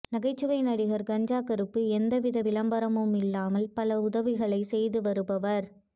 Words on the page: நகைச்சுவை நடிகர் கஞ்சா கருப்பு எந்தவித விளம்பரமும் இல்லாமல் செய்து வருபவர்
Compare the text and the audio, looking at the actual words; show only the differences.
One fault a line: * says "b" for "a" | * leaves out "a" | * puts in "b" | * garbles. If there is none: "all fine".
* puts in "பல உதவிகளை"